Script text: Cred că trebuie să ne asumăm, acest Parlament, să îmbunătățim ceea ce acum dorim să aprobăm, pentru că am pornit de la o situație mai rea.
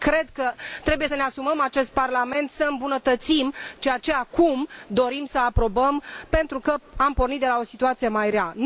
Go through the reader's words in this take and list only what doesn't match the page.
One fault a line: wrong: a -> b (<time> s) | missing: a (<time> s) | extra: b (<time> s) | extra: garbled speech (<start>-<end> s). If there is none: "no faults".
no faults